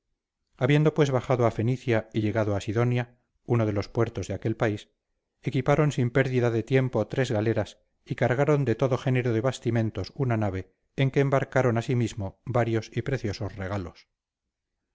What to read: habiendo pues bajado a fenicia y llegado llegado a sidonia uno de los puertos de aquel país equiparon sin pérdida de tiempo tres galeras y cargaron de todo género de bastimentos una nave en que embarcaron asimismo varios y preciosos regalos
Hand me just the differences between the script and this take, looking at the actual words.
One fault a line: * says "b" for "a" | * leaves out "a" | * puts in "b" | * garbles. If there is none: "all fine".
* leaves out "llegado"